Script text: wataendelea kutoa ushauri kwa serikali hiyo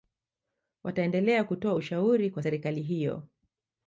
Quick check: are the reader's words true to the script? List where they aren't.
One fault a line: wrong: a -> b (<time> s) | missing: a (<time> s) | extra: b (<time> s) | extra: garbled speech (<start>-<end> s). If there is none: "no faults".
no faults